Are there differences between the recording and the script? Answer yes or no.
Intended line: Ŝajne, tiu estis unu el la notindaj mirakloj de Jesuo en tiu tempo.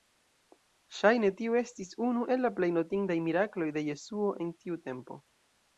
yes